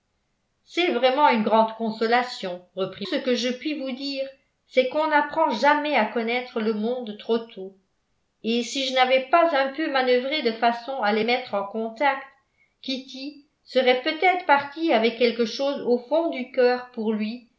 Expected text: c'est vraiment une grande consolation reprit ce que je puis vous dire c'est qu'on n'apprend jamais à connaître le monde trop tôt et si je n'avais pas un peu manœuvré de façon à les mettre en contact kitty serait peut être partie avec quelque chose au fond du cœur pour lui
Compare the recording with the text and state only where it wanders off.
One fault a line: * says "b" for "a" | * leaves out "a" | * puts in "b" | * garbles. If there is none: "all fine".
all fine